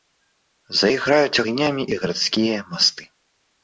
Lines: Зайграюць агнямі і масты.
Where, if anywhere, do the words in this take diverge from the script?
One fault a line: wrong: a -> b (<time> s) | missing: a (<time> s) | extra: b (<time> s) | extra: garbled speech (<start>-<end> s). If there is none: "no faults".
extra: гарадскія (2.0 s)